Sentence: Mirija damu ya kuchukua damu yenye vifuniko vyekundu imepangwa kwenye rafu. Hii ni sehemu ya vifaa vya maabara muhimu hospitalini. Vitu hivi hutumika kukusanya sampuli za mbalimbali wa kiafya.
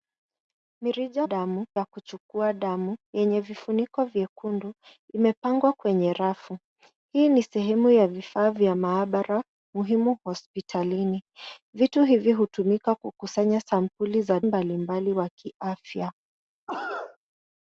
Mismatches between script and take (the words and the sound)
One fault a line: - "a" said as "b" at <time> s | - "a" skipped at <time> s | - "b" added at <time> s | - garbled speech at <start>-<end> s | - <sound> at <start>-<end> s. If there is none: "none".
- cough at 16.7-17.2 s